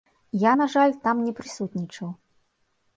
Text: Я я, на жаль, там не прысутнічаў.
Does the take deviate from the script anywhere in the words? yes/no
yes